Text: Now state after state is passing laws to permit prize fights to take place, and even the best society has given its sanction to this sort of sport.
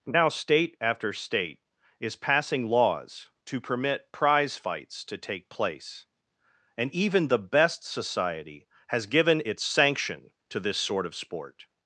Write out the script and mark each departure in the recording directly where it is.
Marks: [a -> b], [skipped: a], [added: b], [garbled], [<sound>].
Now state after state is passing laws to permit prize fights to take place, and even the best society has given its sanction to this sort of sport.